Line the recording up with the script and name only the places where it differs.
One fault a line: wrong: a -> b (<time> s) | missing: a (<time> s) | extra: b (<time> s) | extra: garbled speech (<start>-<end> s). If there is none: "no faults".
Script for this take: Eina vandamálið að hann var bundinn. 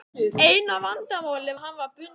no faults